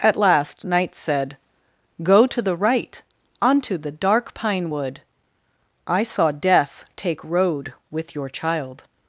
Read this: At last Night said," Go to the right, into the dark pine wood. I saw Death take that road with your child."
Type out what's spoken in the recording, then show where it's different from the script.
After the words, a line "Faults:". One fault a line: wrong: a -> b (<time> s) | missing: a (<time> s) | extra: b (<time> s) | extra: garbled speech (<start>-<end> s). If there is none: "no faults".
At last Night said," Go to the right, onto the dark pine wood. I saw Death take road with your child."
Faults:
wrong: into -> onto (3.4 s)
missing: that (7.2 s)